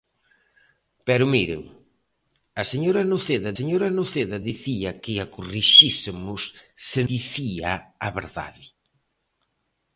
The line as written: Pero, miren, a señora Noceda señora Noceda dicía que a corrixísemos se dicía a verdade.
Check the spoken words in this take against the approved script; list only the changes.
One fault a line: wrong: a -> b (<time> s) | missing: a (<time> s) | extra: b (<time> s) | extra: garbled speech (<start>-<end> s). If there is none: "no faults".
no faults